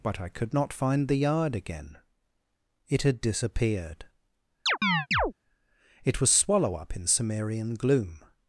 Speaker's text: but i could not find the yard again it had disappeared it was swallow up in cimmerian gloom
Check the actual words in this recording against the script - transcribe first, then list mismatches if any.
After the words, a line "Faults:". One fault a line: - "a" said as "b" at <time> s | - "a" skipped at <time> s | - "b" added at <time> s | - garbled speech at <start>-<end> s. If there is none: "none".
but i could not find the yard again it had disappeared it was swallow up in cimmerian gloom
Faults:
none